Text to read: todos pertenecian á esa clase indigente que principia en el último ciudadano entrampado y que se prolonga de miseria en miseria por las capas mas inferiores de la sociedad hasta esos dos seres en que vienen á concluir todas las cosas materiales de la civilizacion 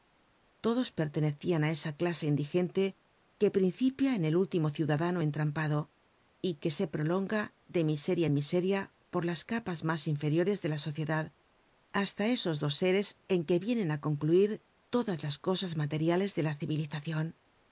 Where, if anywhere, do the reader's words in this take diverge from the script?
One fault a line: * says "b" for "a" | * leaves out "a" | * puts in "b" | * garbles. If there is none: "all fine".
all fine